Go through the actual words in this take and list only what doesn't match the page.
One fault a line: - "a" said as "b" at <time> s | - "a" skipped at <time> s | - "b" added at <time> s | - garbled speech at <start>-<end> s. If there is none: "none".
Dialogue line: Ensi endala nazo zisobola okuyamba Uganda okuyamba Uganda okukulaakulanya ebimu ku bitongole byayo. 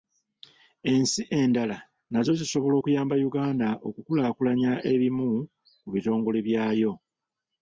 - "okuyamba Uganda" skipped at 3.7 s